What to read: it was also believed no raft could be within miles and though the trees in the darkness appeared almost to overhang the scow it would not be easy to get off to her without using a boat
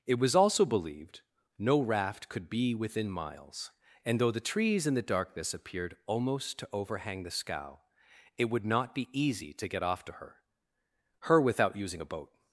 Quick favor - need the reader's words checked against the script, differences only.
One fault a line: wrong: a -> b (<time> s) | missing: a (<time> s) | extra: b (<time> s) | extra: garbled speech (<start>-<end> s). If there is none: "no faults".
extra: her (11.2 s)